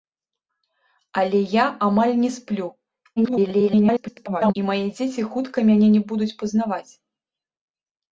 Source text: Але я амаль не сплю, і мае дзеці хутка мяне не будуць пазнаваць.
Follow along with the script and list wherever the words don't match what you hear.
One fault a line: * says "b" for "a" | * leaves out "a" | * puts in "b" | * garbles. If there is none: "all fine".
* garbles